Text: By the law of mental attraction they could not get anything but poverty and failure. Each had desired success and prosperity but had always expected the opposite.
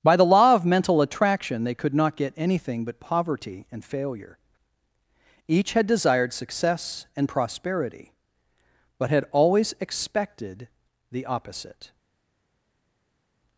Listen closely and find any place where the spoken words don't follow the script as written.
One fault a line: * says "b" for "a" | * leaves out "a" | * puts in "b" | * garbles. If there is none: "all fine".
all fine